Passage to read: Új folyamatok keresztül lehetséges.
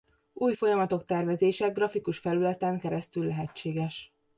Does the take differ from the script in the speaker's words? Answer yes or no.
yes